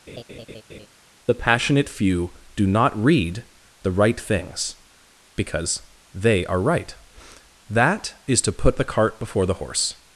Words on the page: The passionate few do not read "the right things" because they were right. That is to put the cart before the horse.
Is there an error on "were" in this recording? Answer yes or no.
yes